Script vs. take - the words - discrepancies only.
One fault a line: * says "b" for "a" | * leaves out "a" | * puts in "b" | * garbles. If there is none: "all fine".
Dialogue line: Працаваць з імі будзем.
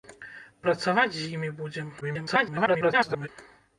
* garbles